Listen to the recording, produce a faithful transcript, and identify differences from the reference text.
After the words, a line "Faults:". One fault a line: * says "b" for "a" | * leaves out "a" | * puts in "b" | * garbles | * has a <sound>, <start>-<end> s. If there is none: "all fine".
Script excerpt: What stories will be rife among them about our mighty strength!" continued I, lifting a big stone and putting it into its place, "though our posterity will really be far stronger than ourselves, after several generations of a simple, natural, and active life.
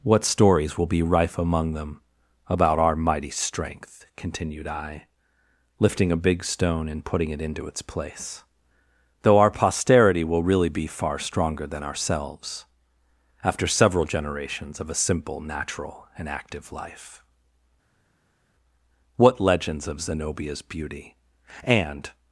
What stories will be rife among them about our mighty strength!" continued I, lifting a big stone and putting it into its place, "though our posterity will really be far stronger than ourselves, after several generations of a simple, natural, and active life. What legends of Zenobia's beauty, and
Faults:
* puts in "What legends of Zenobia's beauty and"